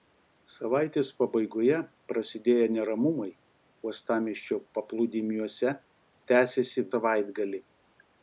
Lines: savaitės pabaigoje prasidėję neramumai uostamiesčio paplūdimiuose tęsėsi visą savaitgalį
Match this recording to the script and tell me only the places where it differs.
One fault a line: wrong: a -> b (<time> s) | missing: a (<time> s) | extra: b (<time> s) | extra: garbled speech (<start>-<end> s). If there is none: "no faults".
missing: visą (6.9 s)